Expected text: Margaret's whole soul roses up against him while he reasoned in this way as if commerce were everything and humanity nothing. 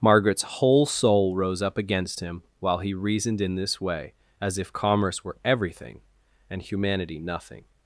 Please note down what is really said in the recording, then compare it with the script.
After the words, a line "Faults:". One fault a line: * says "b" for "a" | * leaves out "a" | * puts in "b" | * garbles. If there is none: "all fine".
Margaret's whole soul rose up against him while he reasoned in this way as if commerce were everything and humanity nothing.
Faults:
* says "rose" for "roses"